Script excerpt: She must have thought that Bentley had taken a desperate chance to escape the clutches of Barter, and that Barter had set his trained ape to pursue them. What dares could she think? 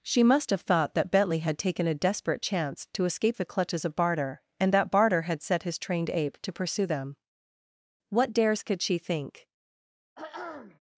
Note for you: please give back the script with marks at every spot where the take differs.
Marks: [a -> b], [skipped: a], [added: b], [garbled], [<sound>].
She must have thought that Bentley had taken a desperate chance to escape the clutches of Barter, and that Barter had set his trained ape to pursue them. What dares could she think? [throat clearing]